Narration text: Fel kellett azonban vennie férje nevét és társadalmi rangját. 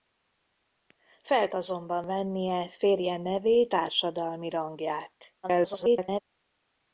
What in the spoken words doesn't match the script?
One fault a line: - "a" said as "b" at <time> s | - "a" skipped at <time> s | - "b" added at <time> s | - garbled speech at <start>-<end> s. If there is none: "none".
- "kellett" skipped at 1.5 s
- "és" skipped at 3.7 s
- garbled speech at 5.4-6.2 s